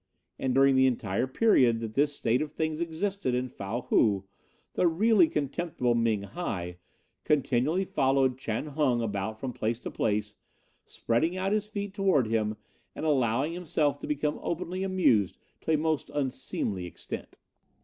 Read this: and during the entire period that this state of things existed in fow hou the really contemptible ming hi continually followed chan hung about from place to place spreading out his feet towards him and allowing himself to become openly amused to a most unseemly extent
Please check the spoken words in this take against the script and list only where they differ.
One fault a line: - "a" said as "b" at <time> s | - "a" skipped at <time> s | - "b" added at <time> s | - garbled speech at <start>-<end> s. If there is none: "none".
none